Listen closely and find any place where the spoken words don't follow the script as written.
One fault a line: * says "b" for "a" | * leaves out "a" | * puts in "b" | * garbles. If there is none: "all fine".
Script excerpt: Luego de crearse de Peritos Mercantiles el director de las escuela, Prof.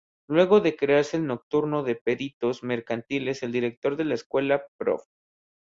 * puts in "el nocturno"
* says "la" for "las"